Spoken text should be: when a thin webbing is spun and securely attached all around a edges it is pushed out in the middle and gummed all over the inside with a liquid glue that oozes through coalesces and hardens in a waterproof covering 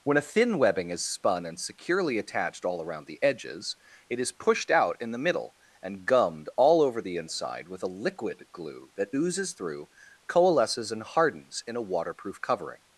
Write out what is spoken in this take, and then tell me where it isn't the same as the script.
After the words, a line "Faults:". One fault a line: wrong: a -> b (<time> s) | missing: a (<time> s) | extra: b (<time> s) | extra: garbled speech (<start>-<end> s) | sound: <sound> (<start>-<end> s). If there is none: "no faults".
when a thin webbing is spun and securely attached all around the edges it is pushed out in the middle and gummed all over the inside with a liquid glue that oozes through coalesces and hardens in a waterproof covering
Faults:
wrong: a -> the (3.0 s)